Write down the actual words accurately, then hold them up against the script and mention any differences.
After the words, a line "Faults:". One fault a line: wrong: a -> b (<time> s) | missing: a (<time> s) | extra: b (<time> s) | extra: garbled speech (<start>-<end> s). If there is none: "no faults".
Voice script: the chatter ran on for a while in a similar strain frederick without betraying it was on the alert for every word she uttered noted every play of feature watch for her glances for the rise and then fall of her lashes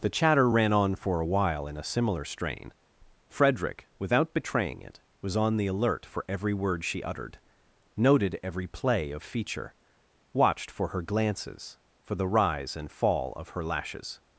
the chatter ran on for a while in a similar strain frederick without betraying it was on the alert for every word she uttered noted every play of feature watched for her glances for the rise and fall of her lashes
Faults:
wrong: watch -> watched (10.3 s)
missing: then (12.9 s)